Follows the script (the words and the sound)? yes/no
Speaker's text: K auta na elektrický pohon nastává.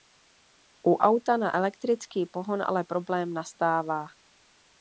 no